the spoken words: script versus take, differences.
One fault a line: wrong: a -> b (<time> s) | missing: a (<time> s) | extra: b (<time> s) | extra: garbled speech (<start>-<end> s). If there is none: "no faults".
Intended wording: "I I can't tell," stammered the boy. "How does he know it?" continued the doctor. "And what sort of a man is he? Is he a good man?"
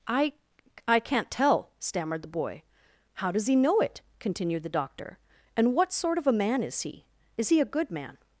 no faults